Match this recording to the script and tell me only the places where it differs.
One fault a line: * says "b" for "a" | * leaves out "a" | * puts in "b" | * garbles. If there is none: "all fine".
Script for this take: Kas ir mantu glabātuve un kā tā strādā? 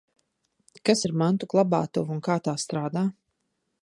all fine